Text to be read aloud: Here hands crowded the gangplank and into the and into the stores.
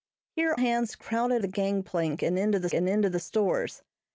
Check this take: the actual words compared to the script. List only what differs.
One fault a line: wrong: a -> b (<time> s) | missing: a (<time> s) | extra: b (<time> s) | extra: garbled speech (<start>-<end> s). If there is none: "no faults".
no faults